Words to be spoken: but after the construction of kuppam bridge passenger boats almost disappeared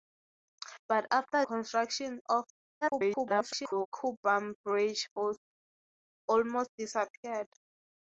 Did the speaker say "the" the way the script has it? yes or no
no